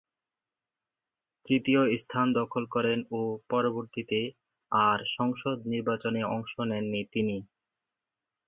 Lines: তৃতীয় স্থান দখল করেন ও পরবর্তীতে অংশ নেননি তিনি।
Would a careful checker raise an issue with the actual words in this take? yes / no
yes